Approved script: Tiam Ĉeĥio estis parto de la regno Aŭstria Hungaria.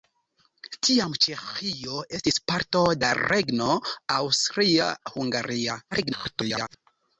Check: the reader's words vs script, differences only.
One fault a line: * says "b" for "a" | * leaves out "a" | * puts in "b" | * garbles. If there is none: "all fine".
* leaves out "de"
* garbles